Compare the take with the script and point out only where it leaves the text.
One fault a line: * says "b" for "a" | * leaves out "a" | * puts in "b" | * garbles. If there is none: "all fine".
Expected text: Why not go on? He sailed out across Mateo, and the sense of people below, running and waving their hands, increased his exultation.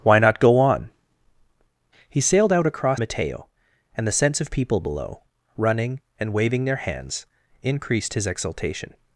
all fine